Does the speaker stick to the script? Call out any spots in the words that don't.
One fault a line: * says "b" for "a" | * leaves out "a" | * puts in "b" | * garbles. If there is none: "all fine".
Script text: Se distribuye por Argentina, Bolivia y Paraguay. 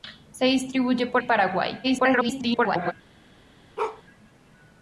* leaves out "Argentina Bolivia"
* garbles